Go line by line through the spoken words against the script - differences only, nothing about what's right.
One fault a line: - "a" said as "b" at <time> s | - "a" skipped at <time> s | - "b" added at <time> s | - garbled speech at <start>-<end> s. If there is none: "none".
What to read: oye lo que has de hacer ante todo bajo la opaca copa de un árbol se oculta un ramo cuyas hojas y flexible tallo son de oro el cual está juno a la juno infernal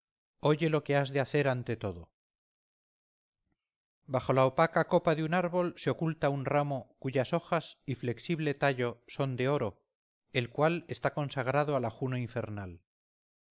- "juno" said as "consagrado" at 11.1 s